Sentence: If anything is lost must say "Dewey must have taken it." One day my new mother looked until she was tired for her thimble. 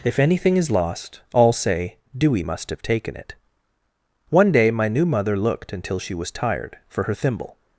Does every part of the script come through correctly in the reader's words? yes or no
no